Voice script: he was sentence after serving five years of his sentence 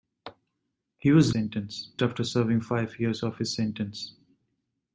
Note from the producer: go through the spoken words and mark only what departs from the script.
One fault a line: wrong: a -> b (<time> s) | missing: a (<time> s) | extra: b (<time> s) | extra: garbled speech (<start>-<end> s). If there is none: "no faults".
no faults